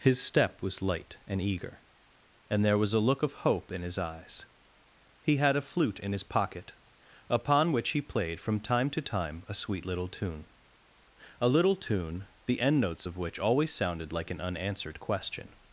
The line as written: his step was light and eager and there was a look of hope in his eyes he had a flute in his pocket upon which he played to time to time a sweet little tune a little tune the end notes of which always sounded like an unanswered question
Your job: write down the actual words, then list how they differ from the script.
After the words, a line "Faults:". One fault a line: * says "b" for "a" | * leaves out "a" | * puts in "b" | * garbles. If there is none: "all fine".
his step was light and eager and there was a look of hope in his eyes he had a flute in his pocket upon which he played from time to time a sweet little tune a little tune the end notes of which always sounded like an unanswered question
Faults:
* says "from" for "to"